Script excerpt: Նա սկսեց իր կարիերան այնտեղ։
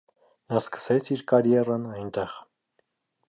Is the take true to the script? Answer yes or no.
yes